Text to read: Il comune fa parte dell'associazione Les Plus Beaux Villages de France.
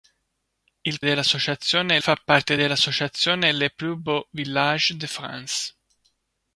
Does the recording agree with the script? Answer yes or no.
no